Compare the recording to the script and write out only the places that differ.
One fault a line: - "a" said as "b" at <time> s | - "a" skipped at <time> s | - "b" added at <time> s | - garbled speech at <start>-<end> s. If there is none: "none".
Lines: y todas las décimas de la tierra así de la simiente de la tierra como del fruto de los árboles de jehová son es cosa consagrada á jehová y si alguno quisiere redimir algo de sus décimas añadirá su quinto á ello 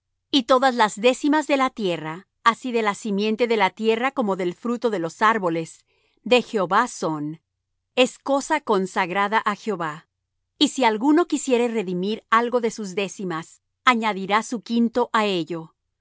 none